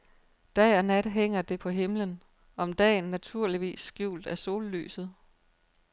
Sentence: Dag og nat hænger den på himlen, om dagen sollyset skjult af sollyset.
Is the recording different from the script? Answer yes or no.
yes